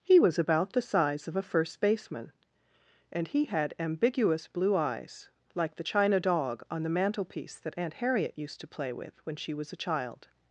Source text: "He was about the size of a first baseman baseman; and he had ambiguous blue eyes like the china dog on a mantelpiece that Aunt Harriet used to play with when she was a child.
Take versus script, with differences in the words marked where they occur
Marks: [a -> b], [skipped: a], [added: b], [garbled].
"He was about the size of a first baseman [skipped: baseman;] and he had ambiguous blue eyes like the china dog on [a -> the] mantelpiece that Aunt Harriet used to play with when she was a child.